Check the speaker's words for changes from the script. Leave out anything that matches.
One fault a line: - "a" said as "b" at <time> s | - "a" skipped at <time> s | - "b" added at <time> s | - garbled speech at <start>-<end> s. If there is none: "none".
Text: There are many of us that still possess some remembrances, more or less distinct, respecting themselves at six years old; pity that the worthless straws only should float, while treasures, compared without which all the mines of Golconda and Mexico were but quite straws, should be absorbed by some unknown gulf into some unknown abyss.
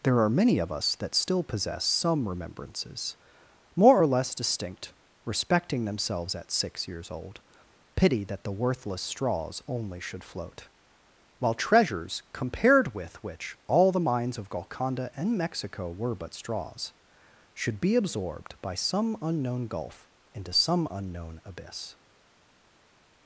- "without" said as "with" at 12.9 s
- "quite" skipped at 16.4 s